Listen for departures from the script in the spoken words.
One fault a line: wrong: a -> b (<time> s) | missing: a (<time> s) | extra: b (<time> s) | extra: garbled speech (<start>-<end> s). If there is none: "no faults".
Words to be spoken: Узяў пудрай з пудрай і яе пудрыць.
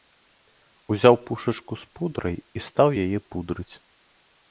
wrong: пудрай -> пушачку (1.3 s)
extra: стаў (2.7 s)